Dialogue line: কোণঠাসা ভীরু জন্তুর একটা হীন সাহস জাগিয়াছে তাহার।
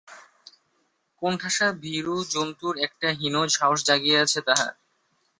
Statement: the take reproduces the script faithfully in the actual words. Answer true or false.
true